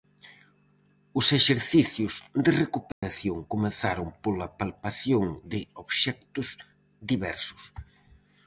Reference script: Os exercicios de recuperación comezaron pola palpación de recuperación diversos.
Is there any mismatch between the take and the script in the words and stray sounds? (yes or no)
yes